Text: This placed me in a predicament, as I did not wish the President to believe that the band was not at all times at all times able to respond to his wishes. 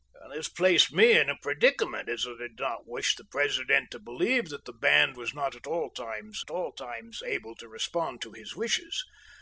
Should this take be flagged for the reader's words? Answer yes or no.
no